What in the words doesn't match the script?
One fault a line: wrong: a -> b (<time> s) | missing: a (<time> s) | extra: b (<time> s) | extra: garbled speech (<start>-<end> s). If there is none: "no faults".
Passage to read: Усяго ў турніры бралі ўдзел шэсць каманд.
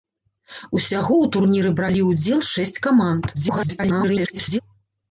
extra: garbled speech (3.3-4.6 s)